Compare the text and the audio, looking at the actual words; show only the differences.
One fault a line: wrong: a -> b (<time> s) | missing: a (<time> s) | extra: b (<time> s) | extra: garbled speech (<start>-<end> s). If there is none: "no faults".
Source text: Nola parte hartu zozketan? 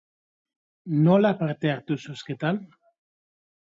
no faults